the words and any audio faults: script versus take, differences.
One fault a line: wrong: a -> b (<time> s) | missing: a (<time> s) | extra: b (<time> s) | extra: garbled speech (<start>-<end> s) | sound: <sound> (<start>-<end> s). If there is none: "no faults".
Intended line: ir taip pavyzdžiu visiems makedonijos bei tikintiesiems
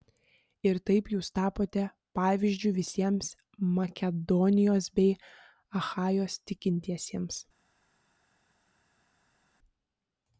extra: jūs tapote (1.1 s)
extra: achajos (5.8 s)